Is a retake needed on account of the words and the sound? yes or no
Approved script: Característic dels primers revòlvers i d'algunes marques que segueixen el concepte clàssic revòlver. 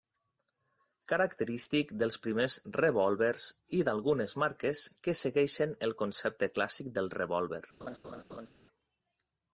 yes